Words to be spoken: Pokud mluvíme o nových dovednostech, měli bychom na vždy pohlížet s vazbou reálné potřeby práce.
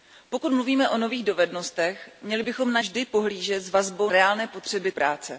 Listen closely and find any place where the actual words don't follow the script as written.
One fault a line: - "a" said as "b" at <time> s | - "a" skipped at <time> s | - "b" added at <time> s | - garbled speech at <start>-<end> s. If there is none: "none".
none